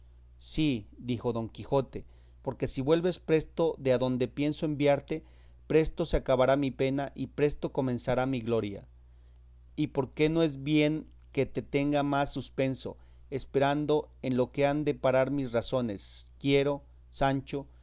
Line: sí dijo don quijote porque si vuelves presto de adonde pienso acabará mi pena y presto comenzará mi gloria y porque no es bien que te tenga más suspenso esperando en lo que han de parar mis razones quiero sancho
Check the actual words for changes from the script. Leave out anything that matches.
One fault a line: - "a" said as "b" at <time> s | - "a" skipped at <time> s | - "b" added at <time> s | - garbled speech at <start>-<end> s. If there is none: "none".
- "enviarte presto se" added at 4.7 s